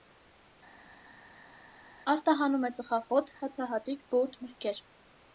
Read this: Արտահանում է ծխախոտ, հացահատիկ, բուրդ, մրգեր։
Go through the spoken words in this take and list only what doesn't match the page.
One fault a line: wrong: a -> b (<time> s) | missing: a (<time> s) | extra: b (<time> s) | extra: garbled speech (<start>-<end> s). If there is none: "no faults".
no faults